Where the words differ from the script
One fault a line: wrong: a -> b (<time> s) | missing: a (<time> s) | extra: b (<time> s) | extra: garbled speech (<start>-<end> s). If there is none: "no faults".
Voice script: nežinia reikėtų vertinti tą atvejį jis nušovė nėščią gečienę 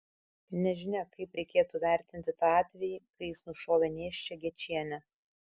extra: kaip (1.2 s)
extra: kai (3.0 s)